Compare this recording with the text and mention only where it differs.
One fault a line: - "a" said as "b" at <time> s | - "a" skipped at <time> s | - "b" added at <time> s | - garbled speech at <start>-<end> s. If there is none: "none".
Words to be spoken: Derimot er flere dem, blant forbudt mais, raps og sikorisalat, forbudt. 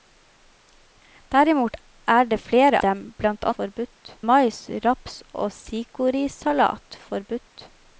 none